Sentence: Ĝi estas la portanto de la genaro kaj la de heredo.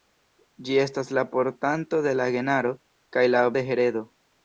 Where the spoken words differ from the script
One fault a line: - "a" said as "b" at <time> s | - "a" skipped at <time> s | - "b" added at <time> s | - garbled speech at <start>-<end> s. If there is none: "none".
none